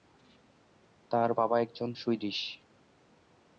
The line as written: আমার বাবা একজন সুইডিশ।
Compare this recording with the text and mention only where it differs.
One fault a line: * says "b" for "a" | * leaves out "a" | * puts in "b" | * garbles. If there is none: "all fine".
* says "তার" for "আমার"